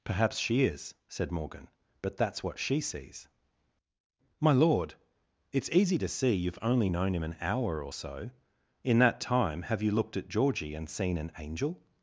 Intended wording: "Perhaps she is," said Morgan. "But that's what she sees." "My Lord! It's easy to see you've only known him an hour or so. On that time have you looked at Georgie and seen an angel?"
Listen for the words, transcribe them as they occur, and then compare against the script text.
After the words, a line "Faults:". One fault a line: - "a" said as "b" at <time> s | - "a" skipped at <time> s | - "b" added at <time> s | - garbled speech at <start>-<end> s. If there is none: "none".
"Perhaps she is," said Morgan. "But that's what she sees." "My Lord! It's easy to see you've only known him an hour or so. In that time have you looked at Georgie and seen an angel?"
Faults:
- "On" said as "In" at 8.8 s